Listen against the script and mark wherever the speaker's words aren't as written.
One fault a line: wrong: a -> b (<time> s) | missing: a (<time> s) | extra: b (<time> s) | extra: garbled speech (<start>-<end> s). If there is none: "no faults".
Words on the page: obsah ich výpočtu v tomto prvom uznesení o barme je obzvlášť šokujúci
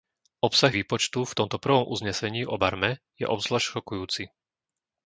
missing: ich (0.7 s)